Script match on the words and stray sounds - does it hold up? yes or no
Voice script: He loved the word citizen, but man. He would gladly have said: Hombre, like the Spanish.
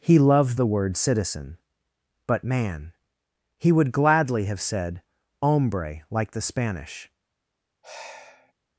no